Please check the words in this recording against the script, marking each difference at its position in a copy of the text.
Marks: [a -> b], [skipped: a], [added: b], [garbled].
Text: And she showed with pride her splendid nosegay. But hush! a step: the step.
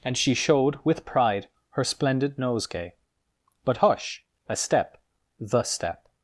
And she showed with pride her splendid nosegay. But hush! a step: the step.